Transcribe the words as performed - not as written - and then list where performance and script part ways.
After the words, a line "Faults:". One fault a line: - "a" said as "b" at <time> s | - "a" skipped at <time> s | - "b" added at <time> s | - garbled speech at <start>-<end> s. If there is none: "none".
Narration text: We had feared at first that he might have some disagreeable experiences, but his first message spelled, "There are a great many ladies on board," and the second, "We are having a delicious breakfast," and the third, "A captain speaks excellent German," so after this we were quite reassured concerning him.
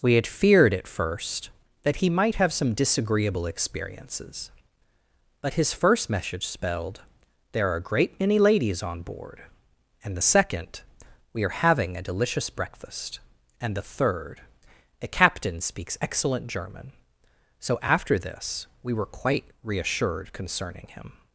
We had feared at first that he might have some disagreeable experiences, but his first message spelled, "There are a great many ladies on board," and the second, "We are having a delicious breakfast," and the third, "A captain speaks excellent German," so after this we were quite reassured concerning him.
Faults:
none